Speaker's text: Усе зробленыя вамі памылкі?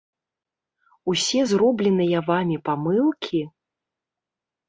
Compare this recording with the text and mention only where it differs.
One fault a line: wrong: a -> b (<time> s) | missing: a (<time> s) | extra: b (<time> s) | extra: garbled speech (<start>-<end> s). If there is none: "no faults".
no faults